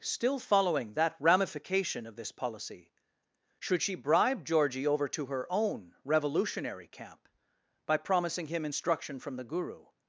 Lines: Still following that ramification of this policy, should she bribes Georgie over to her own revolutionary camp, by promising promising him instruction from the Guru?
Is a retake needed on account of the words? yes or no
yes